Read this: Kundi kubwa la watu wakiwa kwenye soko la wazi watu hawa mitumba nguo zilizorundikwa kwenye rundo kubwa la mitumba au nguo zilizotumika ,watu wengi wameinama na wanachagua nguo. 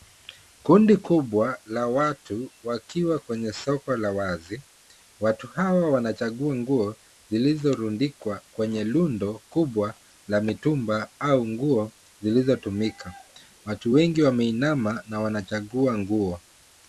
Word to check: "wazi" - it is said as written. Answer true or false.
true